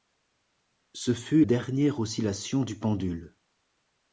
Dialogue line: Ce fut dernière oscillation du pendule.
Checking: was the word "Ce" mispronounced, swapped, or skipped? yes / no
no